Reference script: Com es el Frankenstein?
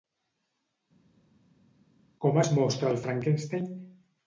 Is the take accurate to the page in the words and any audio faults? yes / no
no